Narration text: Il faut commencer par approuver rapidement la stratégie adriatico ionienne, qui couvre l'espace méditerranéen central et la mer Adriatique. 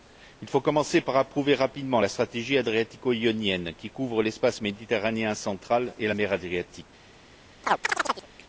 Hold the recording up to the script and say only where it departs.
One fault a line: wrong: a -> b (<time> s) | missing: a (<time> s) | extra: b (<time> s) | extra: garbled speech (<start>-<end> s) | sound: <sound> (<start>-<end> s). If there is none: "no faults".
sound: chirp (7.6-8.3 s)